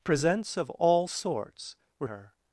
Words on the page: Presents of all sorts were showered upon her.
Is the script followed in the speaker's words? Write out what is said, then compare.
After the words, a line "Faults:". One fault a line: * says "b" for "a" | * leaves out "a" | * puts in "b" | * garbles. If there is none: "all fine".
Presents of all sorts were her.
Faults:
* leaves out "showered upon"